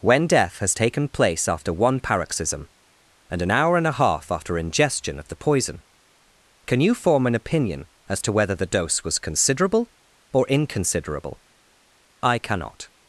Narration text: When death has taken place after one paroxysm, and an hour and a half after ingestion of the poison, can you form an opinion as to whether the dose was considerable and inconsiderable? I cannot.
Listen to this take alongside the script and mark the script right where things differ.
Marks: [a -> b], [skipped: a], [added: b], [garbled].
When death has taken place after one paroxysm, and an hour and a half after ingestion of the poison, can you form an opinion as to whether the dose was considerable [and -> or] inconsiderable? I cannot.